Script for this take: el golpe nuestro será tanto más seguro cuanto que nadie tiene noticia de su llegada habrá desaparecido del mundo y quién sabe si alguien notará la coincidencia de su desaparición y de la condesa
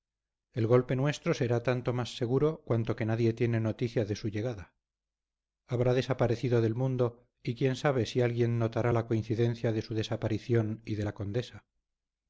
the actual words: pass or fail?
pass